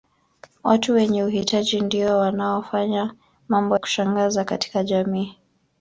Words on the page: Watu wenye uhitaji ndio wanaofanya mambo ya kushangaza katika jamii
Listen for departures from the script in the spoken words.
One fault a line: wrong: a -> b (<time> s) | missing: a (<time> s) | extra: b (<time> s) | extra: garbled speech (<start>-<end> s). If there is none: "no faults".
missing: ya (3.8 s)